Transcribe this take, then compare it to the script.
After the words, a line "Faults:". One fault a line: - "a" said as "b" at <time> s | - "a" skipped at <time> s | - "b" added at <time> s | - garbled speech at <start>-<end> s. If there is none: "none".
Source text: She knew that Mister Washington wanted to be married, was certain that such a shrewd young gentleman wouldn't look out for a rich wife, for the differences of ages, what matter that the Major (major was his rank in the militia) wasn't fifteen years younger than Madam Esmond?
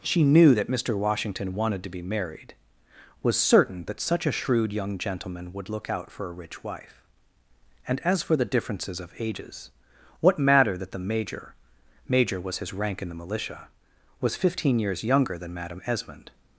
She knew that Mister Washington wanted to be married, was certain that such a shrewd young gentleman would look out for a rich wife, and, as for the differences of ages, what matter that the Major (major was his rank in the militia) was fifteen years younger than Madam Esmond?
Faults:
- "wouldn't" said as "would" at 5.5 s
- "and as" added at 7.9 s
- "wasn't" said as "was" at 14.2 s